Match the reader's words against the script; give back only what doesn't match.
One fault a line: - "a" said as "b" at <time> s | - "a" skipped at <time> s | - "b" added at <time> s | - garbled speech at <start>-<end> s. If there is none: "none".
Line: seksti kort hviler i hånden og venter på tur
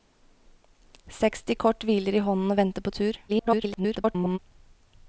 - garbled speech at 3.3-4.4 s